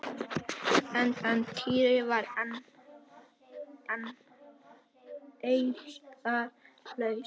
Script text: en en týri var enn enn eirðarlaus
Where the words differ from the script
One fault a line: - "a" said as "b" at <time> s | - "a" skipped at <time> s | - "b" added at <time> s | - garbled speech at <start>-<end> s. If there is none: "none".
none